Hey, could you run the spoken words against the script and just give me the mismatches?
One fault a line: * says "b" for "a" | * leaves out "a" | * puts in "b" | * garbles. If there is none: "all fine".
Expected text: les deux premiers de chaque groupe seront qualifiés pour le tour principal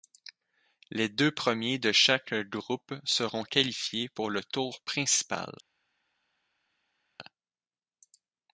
all fine